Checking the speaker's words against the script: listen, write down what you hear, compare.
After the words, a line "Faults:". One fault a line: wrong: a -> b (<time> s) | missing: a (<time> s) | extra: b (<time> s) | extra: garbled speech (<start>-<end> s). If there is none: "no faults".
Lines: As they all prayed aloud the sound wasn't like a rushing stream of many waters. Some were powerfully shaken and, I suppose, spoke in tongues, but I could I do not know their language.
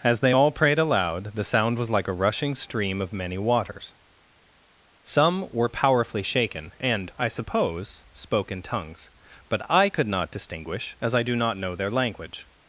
As they all prayed aloud the sound was like a rushing stream of many waters. Some were powerfully shaken and, I suppose, spoke in tongues, but I could not distinguish as I do not know their language.
Faults:
wrong: wasn't -> was (1.8 s)
extra: not distinguish as (10.1 s)